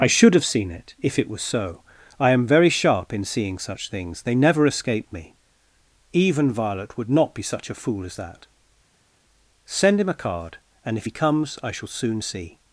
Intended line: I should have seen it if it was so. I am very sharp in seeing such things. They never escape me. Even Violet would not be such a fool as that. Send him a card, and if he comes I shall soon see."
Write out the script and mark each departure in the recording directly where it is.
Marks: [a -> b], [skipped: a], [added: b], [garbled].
I should have seen it if it was so. I am very sharp in seeing such things. They never escape me. Even Violet would not be such a fool as that. Send him a card, and if he comes I shall soon see."